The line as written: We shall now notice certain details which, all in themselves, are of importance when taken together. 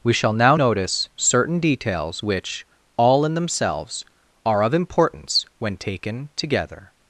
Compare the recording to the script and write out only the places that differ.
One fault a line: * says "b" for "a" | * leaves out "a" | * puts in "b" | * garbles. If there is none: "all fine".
all fine